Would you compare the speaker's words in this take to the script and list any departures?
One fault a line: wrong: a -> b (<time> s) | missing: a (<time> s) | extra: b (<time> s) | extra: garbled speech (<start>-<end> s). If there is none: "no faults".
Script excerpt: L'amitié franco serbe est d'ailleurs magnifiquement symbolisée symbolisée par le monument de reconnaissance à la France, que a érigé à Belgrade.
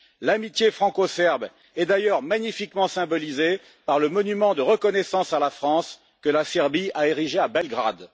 missing: symbolisée (3.6 s)
extra: la Serbie (6.3 s)